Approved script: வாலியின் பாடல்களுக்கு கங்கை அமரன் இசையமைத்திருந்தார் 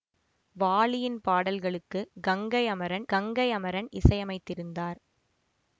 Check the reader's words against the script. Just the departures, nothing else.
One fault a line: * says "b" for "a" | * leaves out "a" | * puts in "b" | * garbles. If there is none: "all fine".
* puts in "கங்கை அமரன்"